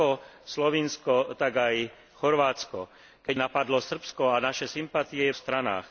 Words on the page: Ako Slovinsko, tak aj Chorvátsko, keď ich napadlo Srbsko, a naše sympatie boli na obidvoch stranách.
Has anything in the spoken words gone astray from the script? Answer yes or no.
yes